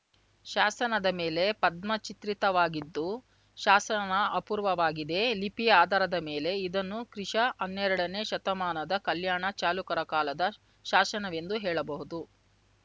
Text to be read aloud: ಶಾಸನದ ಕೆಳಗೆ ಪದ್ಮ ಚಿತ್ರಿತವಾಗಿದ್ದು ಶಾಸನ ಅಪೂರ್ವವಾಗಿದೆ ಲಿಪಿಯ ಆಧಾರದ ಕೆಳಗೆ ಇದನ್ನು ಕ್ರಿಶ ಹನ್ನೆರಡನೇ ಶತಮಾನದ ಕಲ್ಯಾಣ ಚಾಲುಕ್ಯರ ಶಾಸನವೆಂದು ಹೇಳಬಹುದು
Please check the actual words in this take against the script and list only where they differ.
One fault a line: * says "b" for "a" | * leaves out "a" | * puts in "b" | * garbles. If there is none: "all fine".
* says "ಮೇಲೆ" for "ಕೆಳಗೆ"
* says "ಮೇಲೆ" for "ಕೆಳಗೆ"
* puts in "ಕಾಲದ"